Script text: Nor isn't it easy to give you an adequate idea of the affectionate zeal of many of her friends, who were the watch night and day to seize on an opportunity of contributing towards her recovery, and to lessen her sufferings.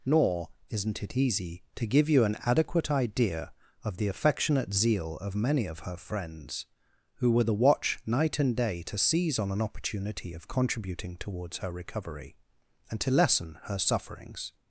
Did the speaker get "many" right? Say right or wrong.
right